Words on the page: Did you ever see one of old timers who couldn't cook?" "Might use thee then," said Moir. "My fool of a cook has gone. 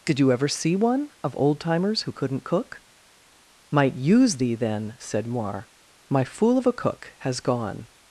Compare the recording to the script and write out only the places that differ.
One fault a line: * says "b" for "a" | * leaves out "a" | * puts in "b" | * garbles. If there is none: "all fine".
all fine